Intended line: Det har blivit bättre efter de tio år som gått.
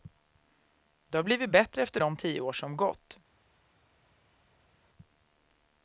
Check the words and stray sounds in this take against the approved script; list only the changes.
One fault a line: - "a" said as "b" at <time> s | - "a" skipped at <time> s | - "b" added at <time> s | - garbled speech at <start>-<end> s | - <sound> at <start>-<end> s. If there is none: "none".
none